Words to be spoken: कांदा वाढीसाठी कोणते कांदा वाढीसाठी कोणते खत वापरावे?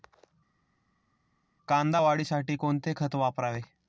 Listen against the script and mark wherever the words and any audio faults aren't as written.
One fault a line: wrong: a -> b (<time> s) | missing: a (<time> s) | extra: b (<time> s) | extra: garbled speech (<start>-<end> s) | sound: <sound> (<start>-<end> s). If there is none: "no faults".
missing: कांदा वाढीसाठी कोणते (2.9 s)